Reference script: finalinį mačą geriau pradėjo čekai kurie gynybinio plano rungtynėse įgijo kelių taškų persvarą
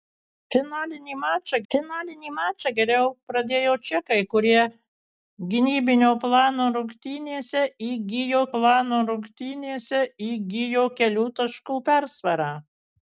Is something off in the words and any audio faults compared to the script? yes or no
yes